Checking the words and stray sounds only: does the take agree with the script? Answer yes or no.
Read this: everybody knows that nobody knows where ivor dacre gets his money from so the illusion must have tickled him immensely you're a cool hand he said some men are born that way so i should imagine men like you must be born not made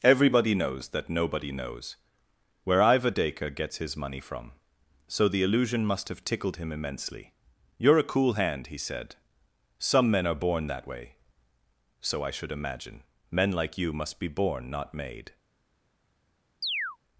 no